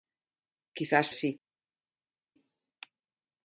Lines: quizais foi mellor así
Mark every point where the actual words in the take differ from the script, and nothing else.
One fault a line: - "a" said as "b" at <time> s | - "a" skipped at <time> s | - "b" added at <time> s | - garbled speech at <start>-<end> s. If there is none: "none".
- "foi mellor" skipped at 1.1 s